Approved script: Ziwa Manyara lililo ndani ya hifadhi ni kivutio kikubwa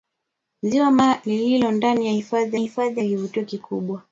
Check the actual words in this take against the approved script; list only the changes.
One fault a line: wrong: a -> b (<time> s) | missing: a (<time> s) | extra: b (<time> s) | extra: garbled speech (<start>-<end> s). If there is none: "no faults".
missing: Manyara (1.2 s)
extra: hifadhi (2.6 s)